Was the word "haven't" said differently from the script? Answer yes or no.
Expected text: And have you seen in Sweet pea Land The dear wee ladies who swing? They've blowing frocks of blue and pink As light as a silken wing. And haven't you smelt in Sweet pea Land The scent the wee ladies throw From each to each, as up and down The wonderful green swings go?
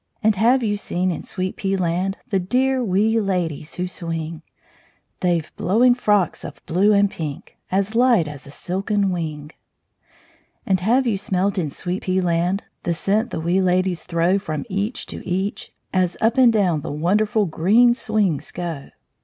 yes